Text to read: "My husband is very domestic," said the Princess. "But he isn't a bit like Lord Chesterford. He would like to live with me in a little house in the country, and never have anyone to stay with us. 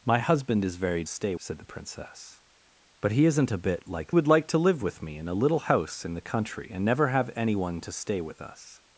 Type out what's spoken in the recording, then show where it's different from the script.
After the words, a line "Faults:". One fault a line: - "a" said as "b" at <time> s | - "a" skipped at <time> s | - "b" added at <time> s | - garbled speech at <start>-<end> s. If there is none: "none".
"My husband is very stay," said the Princess. "But he isn't a bit like Would like to live with me in a little house in the country, and never have anyone to stay with us.
Faults:
- "domestic" said as "stay" at 1.1 s
- "Lord Chesterford He" skipped at 4.2 s